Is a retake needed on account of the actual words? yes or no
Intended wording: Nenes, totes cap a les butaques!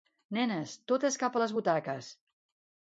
no